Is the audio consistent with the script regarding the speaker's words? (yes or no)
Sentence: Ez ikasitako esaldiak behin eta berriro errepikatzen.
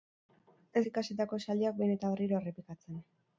yes